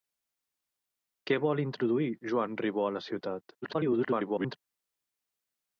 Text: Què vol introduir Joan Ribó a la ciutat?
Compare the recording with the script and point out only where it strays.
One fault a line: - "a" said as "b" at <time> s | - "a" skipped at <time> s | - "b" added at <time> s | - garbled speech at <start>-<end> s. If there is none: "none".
- garbled speech at 3.6-4.6 s